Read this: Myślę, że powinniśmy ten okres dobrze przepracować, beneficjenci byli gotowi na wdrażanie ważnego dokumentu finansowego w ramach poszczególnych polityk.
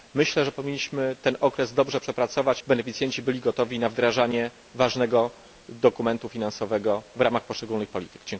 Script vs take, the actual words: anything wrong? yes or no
no